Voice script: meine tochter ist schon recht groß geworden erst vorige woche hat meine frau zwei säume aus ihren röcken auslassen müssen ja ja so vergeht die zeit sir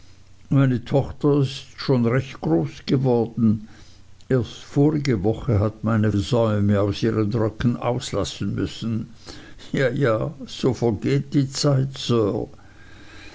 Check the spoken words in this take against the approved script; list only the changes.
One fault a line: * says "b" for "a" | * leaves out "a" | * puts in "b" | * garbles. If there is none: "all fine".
* leaves out "frau zwei"